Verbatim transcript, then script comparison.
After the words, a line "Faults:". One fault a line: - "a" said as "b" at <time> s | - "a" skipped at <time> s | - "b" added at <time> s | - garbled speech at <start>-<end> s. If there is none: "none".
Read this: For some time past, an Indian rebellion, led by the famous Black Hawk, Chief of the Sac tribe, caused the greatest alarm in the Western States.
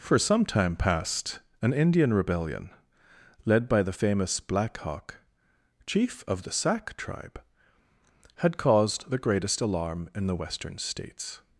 For some time past, an Indian rebellion, led by the famous Black Hawk, Chief of the Sac tribe, had caused the greatest alarm in the Western States.
Faults:
- "had" added at 8.4 s